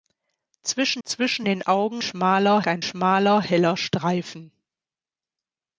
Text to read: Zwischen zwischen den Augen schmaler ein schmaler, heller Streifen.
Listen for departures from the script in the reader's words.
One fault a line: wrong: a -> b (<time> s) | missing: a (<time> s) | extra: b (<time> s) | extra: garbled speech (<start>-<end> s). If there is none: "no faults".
no faults